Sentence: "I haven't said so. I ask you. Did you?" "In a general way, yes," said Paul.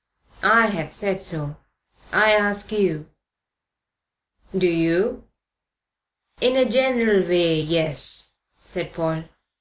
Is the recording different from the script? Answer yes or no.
yes